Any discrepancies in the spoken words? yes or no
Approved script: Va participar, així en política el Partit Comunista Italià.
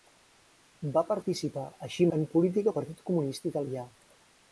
no